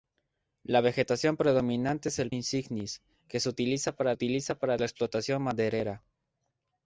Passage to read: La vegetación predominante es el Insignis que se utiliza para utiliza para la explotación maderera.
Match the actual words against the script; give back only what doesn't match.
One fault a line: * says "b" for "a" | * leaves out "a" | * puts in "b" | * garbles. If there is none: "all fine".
all fine